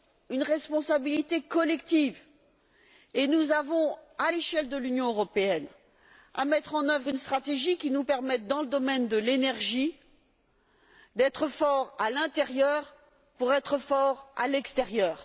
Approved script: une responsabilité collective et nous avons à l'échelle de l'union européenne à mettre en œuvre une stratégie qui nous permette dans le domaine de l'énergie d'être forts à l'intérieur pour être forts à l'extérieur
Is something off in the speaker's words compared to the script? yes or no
no